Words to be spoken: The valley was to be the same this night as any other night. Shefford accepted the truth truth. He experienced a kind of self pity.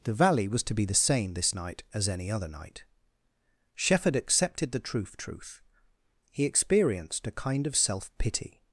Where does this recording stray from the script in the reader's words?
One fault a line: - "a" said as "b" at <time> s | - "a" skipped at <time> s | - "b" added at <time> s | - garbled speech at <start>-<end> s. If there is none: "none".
none